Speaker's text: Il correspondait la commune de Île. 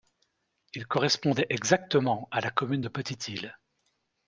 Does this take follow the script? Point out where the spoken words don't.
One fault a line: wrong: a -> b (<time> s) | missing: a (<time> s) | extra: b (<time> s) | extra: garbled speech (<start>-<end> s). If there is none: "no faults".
extra: exactement à (1.5 s)
extra: Petite (2.9 s)